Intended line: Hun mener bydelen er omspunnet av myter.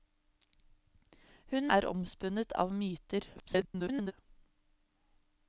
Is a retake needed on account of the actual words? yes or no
yes